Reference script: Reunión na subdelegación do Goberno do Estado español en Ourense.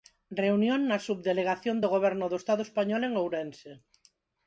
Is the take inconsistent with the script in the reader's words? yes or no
no